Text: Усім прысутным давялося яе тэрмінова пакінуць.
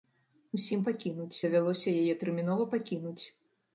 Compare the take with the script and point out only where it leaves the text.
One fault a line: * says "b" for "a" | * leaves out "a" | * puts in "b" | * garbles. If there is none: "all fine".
* says "пакінуць" for "прысутным"